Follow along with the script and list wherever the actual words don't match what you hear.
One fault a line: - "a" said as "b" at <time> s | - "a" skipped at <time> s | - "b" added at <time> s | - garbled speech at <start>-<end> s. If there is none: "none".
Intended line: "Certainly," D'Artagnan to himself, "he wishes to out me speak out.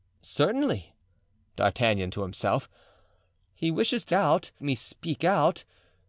none